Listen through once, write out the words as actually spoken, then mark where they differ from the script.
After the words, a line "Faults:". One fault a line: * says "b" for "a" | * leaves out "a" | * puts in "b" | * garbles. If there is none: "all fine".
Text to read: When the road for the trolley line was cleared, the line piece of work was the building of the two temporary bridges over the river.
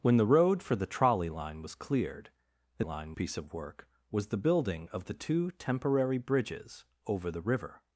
When the road for the trolley line was cleared, the line piece of work was the building of the two temporary bridges over the river.
Faults:
all fine